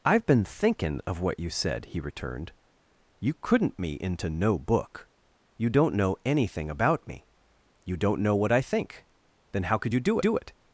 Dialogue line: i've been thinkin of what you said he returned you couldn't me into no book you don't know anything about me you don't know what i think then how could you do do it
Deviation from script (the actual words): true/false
false